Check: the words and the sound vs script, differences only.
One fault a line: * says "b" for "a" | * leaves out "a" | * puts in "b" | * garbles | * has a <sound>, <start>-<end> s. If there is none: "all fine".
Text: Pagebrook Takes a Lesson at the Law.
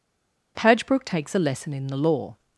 * says "in" for "at"